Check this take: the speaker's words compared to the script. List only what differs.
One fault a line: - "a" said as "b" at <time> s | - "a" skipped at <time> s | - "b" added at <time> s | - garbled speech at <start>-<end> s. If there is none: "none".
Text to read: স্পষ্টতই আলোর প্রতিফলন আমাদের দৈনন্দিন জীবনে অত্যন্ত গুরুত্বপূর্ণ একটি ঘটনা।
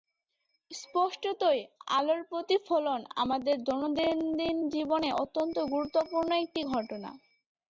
none